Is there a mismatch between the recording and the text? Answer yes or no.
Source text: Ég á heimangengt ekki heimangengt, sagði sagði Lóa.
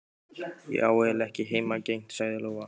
yes